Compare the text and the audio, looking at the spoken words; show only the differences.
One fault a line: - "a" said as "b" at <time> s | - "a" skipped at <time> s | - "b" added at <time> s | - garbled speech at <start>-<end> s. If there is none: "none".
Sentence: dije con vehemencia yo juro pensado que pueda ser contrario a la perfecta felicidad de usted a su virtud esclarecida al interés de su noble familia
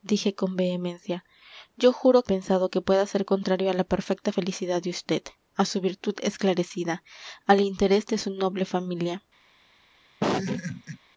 none